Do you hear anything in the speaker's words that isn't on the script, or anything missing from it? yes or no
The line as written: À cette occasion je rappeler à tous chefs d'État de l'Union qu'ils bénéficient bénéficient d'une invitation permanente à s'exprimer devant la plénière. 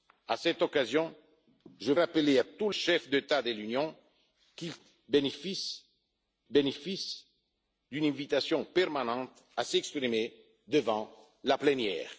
no